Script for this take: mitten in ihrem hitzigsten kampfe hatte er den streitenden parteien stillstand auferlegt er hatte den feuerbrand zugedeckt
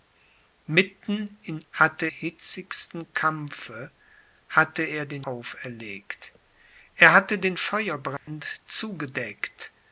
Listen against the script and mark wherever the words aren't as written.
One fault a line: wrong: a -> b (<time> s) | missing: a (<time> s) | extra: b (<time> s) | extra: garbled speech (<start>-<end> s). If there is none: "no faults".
wrong: ihrem -> hatte (1.7 s)
missing: streitenden parteien stillstand (5.2 s)